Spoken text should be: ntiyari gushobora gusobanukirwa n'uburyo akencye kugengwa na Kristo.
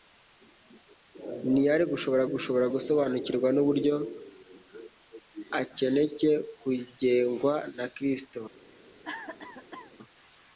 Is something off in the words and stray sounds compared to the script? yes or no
yes